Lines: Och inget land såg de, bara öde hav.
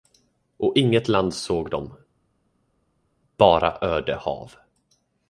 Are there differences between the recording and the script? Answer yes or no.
no